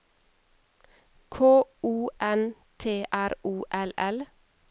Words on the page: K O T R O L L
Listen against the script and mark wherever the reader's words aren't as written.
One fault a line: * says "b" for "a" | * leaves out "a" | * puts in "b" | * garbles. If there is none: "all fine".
* puts in "N"